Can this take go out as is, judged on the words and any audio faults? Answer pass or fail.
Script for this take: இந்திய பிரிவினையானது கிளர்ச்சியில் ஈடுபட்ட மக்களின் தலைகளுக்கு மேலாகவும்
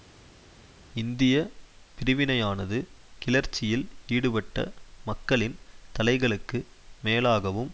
pass